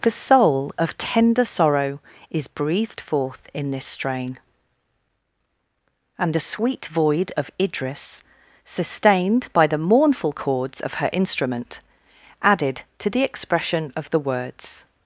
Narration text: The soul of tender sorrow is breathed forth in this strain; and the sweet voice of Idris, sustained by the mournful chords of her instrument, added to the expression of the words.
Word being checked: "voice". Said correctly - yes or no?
no